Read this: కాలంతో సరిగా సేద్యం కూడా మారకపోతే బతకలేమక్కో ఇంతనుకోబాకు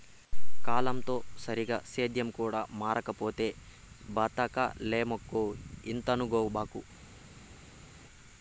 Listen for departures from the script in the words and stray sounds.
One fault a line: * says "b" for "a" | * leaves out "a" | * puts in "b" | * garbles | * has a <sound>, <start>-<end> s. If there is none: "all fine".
all fine